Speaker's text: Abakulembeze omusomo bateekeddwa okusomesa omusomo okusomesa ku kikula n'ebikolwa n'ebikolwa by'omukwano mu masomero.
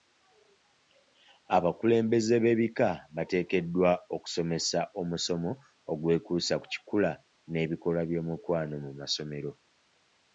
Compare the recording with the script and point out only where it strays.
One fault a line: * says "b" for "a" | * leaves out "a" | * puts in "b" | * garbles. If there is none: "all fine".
* says "b'ebika" for "omusomo"
* says "ogwekuusa" for "okusomesa"
* leaves out "n'ebikolwa"